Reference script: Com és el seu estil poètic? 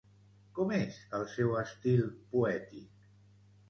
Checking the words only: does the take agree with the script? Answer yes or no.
yes